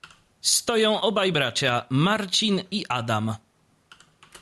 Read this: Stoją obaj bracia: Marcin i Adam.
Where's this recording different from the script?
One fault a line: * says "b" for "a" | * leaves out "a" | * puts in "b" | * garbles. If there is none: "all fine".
all fine